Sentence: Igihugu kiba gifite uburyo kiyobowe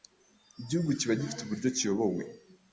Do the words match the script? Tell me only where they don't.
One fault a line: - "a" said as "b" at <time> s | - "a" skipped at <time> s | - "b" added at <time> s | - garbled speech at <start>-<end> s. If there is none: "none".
none